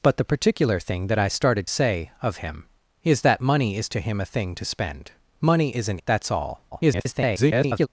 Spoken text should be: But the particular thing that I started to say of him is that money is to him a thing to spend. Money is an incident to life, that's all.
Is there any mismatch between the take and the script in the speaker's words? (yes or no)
yes